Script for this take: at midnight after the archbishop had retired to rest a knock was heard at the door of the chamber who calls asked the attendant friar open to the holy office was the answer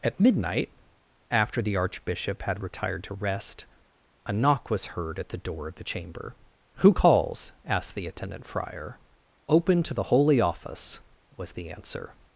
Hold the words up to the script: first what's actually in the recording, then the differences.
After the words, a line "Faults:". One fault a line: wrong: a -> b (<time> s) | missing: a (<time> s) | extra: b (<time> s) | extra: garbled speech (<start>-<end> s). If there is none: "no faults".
at midnight after the archbishop had retired to rest a knock was heard at the door of the chamber who calls asked the attendant friar open to the holy office was the answer
Faults:
no faults